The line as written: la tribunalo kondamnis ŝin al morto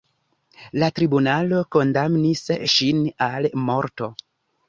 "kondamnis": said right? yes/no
yes